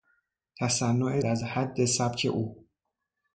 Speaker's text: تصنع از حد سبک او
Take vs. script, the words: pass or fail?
pass